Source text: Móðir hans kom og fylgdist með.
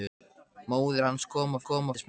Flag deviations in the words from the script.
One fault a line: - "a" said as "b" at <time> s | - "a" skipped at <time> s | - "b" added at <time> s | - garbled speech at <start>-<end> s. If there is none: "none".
- "fylgdist" said as "kom" at 1.6 s